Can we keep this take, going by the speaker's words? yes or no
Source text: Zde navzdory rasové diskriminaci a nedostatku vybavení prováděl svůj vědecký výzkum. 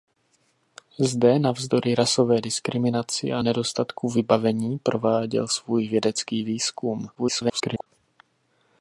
no